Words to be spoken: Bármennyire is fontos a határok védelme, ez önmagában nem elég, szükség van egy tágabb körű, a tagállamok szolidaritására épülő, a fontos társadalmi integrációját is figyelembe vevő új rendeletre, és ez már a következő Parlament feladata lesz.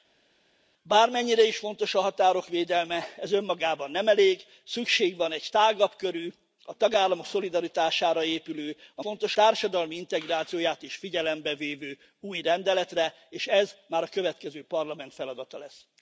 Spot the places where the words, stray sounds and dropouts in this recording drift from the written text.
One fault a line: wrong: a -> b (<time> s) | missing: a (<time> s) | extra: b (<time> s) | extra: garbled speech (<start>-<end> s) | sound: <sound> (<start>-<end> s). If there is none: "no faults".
no faults